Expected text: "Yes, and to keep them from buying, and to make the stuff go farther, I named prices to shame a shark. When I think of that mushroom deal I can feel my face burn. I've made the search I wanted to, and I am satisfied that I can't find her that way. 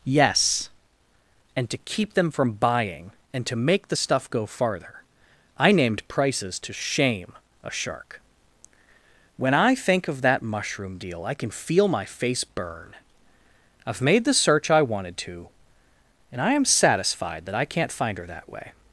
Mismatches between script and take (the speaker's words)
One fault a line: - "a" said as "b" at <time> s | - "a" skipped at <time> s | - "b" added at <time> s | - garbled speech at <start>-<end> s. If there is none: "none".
none